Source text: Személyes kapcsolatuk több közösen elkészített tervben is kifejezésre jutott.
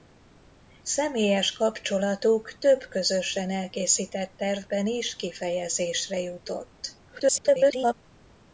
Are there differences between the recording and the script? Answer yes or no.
yes